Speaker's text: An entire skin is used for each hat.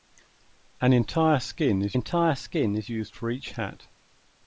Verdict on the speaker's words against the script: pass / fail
fail